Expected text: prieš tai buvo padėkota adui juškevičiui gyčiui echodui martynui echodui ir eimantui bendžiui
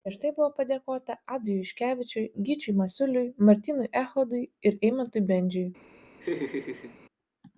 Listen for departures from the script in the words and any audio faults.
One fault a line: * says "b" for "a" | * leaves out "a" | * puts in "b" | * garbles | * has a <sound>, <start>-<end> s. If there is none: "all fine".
* says "masiuliui" for "echodui"
* has a laugh, 6.2-7.0 s